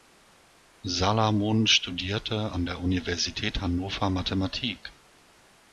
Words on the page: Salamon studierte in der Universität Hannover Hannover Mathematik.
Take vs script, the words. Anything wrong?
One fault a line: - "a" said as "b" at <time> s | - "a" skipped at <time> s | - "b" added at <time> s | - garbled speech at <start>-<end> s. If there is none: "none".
- "in" said as "an" at 2.5 s
- "Hannover" skipped at 4.1 s